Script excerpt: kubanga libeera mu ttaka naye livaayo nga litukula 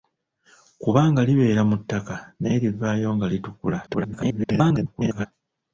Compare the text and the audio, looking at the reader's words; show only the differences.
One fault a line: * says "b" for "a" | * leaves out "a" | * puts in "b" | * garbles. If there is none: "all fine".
* garbles